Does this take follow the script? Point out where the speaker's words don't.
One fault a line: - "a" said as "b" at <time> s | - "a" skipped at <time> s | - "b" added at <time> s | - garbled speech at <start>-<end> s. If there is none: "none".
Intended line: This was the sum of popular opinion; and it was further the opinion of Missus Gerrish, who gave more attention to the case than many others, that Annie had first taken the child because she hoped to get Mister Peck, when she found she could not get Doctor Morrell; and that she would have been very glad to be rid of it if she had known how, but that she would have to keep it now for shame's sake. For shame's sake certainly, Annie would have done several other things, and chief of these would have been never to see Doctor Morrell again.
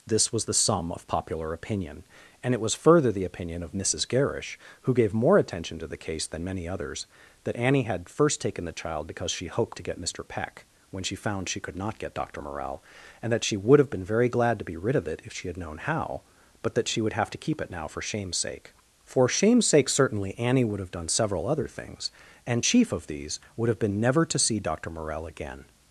none